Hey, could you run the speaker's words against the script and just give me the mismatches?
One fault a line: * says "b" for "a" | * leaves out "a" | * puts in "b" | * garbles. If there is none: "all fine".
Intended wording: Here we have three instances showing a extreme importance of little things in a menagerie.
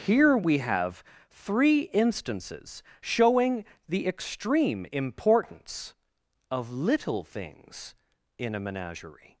* says "the" for "a"